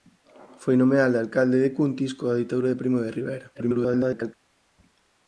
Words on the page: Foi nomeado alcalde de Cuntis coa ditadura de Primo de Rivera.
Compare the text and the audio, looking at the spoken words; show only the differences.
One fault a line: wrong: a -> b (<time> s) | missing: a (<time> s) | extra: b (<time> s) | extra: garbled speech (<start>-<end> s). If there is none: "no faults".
extra: garbled speech (3.5-4.3 s)